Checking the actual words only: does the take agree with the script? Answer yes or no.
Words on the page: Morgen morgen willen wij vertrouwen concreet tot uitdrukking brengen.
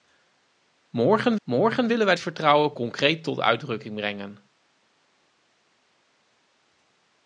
yes